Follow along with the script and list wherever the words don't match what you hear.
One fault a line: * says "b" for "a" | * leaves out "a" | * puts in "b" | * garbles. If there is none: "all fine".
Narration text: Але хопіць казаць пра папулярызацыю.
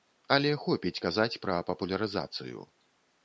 all fine